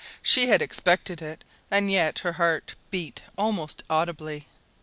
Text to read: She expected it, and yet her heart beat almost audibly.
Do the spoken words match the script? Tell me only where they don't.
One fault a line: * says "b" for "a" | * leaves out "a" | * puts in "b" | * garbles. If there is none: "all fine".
* puts in "had"